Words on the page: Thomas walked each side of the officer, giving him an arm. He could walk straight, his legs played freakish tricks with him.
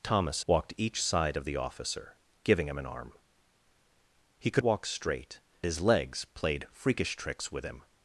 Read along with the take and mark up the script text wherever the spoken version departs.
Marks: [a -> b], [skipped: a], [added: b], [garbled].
Thomas walked each side of the officer, giving him an arm. He could walk straight, his legs played freakish tricks with him.